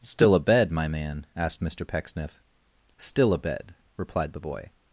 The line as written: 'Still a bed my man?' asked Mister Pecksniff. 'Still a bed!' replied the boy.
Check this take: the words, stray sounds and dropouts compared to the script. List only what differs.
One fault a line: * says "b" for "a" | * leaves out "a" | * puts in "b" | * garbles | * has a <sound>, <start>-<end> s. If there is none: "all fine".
all fine